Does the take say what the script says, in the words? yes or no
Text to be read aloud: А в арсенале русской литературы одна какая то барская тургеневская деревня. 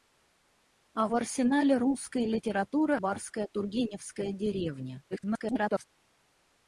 no